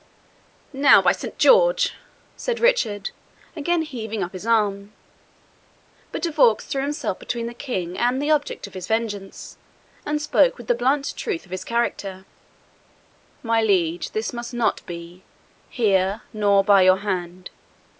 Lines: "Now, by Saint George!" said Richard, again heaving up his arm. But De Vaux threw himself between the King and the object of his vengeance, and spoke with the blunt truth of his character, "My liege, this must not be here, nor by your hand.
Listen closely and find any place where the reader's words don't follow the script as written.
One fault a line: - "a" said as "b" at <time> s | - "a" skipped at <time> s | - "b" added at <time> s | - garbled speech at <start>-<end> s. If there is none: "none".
none